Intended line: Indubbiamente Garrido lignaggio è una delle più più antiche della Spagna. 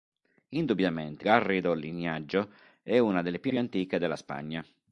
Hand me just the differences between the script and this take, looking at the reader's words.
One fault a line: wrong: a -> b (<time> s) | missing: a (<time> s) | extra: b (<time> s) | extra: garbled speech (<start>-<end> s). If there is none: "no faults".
no faults